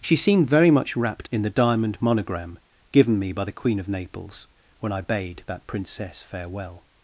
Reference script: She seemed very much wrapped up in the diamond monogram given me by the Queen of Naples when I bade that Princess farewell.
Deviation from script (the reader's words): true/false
true